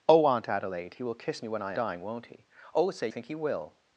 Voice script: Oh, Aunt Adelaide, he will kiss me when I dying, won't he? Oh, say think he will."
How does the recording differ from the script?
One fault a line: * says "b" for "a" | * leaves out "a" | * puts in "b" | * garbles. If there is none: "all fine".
all fine